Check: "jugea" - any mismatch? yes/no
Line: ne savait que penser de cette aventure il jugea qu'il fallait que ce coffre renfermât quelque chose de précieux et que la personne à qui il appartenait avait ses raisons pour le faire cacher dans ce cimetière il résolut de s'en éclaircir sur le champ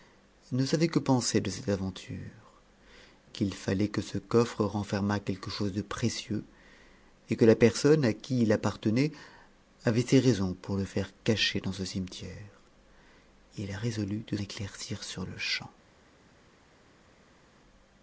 yes